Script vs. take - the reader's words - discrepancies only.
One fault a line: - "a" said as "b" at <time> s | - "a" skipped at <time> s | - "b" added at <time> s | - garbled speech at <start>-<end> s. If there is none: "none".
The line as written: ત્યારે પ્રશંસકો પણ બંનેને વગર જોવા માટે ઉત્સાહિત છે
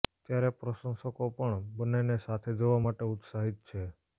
- "વગર" said as "સાથે" at 2.2 s